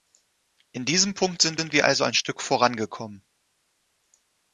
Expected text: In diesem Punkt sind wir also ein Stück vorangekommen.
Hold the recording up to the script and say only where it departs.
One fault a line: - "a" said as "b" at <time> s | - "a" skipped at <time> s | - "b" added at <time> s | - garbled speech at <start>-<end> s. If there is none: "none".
- "sind" added at 1.6 s